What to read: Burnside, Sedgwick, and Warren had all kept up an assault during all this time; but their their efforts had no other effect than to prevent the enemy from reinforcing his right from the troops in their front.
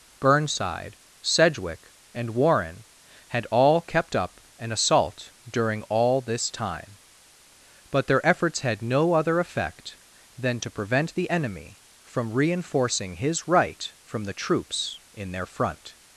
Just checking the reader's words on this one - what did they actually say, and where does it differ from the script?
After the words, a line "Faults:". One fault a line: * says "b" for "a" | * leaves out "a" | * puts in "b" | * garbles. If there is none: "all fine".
Burnside, Sedgwick, and Warren had all kept up an assault during all this time; but their efforts had no other effect than to prevent the enemy from reinforcing his right from the troops in their front.
Faults:
* leaves out "their"